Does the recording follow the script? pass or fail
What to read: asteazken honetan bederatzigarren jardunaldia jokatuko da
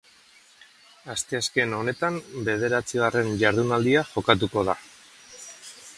pass